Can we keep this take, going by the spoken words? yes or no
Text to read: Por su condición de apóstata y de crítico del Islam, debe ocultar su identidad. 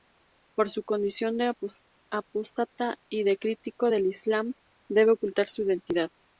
yes